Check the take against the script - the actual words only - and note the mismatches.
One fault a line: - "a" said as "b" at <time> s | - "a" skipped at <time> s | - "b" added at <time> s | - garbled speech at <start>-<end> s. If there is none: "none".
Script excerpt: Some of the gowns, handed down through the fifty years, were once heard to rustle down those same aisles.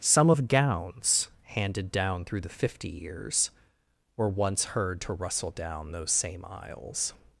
- "the" skipped at 0.5 s